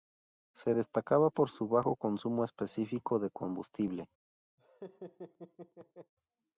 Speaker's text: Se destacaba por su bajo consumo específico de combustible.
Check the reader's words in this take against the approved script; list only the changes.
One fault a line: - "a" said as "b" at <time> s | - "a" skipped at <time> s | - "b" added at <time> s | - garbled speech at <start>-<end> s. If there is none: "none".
none